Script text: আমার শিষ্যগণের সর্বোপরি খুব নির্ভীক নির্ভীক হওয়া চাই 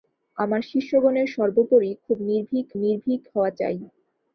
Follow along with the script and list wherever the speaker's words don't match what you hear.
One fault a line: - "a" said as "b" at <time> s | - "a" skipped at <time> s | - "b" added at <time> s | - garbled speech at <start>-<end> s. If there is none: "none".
none